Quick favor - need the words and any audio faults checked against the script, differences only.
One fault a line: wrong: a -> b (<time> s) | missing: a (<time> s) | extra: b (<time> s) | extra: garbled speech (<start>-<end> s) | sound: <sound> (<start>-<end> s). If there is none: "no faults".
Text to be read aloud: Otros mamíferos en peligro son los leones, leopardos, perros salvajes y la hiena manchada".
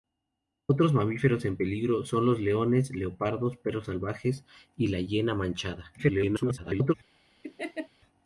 extra: garbled speech (6.0-6.9 s)
sound: laugh (7.4-7.9 s)